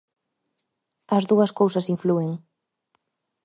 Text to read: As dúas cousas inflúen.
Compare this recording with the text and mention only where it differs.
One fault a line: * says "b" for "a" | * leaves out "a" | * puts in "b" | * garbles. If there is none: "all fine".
all fine